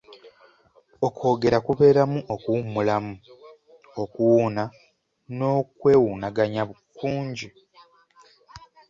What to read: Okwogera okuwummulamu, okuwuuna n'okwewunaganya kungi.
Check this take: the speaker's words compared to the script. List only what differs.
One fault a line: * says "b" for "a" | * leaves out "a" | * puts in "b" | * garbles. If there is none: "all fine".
* puts in "kubeeramu"